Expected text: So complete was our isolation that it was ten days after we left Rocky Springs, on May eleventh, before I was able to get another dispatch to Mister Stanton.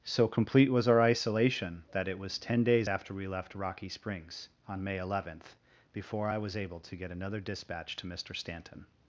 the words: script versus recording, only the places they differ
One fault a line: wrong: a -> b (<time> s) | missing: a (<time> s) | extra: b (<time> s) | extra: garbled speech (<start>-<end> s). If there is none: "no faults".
no faults